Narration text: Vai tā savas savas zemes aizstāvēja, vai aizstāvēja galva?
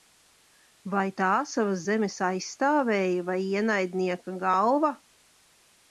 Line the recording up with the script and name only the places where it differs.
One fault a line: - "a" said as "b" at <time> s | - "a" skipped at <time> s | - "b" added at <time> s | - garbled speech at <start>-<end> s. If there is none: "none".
- "savas" skipped at 1.8 s
- "aizstāvēja" said as "ienaidnieka" at 3.5 s